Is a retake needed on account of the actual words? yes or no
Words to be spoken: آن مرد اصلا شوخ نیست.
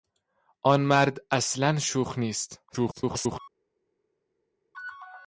yes